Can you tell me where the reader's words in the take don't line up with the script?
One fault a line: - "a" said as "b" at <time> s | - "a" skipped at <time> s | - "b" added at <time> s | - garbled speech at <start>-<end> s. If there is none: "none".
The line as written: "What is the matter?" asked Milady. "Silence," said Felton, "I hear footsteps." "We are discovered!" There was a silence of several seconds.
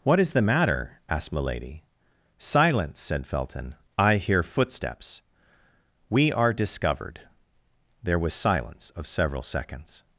- "a" skipped at 8.3 s